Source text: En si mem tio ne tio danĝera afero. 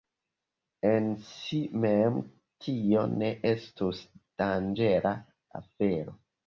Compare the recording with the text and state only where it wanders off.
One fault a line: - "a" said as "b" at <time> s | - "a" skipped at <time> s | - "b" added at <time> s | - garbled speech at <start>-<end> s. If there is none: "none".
- "tio" said as "estus" at 3.5 s